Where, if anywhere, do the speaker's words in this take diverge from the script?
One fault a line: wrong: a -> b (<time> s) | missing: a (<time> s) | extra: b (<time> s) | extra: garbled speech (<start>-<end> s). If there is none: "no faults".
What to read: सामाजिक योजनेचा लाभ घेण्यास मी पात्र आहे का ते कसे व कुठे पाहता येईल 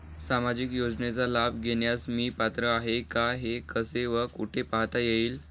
wrong: ते -> हे (3.3 s)